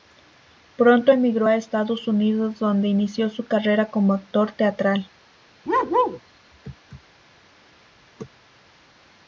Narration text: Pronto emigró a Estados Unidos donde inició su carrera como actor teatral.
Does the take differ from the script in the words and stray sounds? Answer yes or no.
yes